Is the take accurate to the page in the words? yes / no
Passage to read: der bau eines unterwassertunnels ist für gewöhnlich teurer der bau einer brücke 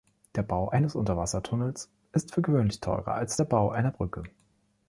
no